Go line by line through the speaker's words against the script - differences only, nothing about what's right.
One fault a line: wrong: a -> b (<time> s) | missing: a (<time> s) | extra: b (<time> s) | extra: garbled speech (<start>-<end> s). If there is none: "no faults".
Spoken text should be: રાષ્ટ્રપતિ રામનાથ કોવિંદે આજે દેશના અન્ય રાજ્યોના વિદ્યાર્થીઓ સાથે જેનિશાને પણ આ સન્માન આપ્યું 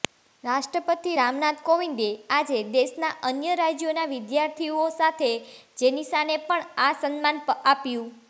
no faults